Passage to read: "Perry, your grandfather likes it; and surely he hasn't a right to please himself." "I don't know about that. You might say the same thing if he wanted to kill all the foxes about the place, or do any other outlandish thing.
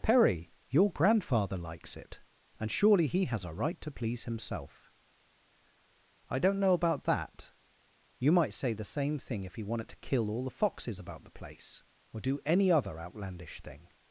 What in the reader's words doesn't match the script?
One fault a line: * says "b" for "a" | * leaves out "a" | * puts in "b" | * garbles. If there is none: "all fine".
* says "has" for "hasn't"